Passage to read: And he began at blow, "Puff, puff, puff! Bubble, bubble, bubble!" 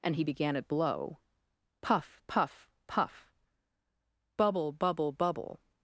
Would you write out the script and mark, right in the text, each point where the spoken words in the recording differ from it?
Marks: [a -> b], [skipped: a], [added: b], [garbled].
And he began at blow, "Puff, puff, puff! Bubble, bubble, bubble!"